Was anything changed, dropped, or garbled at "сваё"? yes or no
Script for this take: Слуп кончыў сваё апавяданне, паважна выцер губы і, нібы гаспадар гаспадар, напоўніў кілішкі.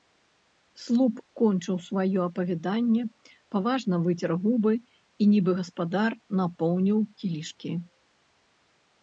no